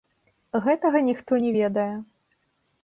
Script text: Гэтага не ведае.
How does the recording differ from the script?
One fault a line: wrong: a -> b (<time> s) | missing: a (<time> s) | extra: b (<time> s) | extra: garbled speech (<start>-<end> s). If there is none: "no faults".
extra: ніхто (1.1 s)